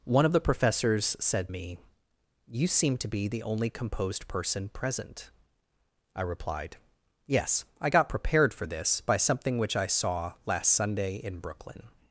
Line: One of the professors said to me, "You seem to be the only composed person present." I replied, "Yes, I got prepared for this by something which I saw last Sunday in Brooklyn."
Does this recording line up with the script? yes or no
no